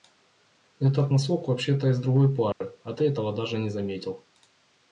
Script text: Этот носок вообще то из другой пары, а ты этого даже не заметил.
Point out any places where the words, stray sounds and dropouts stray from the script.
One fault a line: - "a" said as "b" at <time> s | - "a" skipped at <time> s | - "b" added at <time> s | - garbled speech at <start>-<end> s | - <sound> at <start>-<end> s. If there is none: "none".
- dropout at 2.5-2.6 s